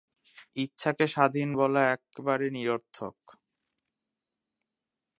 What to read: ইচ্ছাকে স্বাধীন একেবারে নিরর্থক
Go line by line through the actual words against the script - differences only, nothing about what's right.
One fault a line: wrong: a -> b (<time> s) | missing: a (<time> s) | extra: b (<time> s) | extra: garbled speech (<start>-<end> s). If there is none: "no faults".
extra: বলা (1.6 s)